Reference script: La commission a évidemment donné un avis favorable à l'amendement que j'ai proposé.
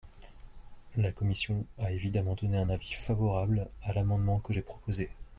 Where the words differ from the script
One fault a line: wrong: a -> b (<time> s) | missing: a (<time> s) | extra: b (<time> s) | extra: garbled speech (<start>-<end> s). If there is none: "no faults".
no faults